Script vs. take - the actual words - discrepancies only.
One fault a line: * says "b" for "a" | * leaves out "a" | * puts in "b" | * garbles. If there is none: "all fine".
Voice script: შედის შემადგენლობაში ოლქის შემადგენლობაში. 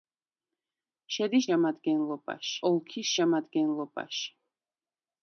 all fine